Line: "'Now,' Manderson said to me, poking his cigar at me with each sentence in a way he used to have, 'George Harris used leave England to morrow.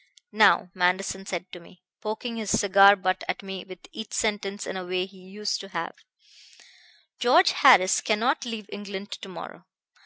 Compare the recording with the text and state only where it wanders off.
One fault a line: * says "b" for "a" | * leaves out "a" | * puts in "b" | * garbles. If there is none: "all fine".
* puts in "butt"
* says "cannot" for "used"